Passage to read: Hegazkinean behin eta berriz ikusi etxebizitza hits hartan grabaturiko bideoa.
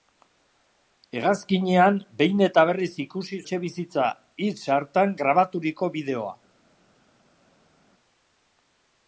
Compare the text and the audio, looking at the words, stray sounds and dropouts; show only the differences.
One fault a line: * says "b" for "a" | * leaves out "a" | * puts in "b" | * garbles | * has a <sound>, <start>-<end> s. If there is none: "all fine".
all fine